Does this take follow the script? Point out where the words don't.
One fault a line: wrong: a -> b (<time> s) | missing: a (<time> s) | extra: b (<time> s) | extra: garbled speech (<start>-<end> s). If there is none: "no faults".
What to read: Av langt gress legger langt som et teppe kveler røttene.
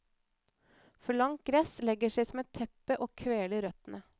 wrong: Av -> For (1.0 s)
wrong: langt -> seg (2.2 s)
extra: og (3.0 s)